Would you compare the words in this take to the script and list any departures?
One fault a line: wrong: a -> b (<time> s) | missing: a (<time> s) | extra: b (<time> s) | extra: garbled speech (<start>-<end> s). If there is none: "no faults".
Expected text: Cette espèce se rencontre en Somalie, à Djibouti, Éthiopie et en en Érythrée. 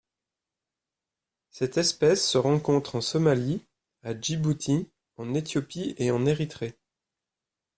extra: en (5.2 s)
missing: en (6.2 s)